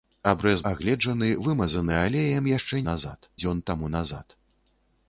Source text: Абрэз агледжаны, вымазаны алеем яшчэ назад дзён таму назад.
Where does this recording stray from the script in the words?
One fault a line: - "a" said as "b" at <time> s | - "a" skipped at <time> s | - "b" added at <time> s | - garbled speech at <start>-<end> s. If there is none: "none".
none